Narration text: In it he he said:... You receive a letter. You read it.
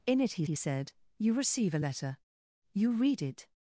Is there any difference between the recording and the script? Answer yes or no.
no